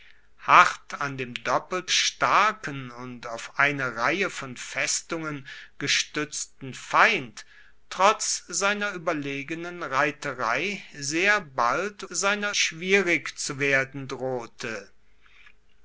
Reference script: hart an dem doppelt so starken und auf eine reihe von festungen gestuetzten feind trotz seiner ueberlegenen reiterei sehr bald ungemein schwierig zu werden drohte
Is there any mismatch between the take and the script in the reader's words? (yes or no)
yes